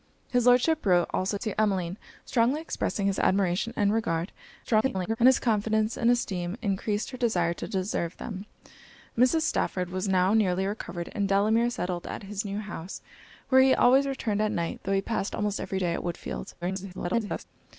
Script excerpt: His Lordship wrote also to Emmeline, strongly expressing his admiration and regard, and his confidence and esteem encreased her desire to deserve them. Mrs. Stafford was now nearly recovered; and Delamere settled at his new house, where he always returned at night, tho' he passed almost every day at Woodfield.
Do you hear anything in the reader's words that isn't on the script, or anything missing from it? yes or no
yes